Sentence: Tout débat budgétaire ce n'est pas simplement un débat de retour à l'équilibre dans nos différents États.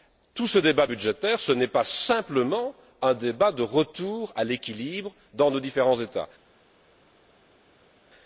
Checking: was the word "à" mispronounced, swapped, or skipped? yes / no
no